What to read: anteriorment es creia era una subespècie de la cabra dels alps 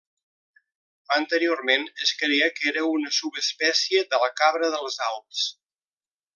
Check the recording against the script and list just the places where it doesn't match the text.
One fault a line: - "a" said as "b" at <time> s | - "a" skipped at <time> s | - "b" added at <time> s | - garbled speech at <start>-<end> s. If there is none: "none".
- "que" added at 2.6 s